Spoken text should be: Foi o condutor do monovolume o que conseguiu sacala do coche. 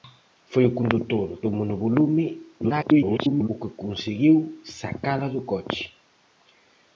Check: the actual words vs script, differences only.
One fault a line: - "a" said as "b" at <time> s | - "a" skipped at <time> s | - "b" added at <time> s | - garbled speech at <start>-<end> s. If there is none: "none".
- garbled speech at 2.6-3.5 s